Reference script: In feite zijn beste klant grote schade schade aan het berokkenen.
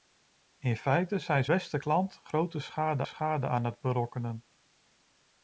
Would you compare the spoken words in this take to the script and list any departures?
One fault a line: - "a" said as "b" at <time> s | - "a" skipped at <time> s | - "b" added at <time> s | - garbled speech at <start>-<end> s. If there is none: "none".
none